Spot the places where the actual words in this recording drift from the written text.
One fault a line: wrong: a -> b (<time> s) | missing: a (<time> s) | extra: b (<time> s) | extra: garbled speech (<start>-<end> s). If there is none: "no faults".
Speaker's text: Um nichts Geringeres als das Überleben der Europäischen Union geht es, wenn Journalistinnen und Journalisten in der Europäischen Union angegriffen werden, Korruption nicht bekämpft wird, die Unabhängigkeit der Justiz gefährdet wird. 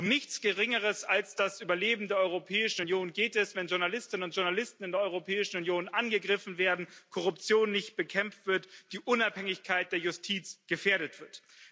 no faults